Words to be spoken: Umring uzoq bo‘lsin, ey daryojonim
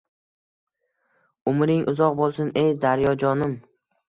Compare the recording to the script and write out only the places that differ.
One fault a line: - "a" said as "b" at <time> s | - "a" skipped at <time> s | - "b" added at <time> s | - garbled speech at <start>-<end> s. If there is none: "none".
none